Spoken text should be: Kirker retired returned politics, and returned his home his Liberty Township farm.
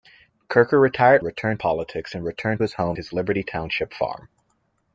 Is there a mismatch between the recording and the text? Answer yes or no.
no